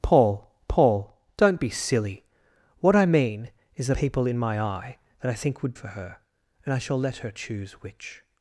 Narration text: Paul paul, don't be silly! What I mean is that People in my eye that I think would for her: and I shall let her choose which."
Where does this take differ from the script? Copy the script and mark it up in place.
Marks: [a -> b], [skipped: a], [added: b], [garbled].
Paul paul, don't be silly! What I mean is that People in my eye that I think would for her: and I shall let her choose which."